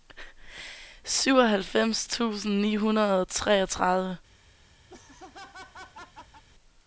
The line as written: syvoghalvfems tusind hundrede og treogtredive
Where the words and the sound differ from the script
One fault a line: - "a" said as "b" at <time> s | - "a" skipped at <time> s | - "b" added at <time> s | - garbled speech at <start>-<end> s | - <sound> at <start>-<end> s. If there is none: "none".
- "ni" added at 2.6 s
- laugh at 4.9-6.4 s